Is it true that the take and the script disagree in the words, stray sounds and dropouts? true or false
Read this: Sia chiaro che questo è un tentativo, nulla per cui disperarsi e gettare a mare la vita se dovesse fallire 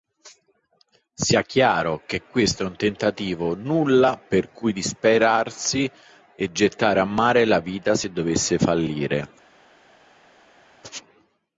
false